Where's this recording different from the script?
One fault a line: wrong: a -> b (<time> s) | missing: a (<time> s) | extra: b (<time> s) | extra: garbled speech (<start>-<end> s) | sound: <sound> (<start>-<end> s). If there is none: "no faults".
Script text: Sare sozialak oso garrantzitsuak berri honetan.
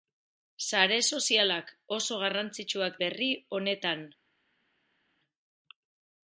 no faults